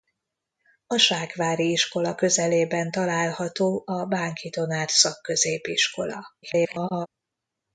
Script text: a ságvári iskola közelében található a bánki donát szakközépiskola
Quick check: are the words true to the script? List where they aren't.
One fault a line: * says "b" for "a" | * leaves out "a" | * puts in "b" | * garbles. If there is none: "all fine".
* garbles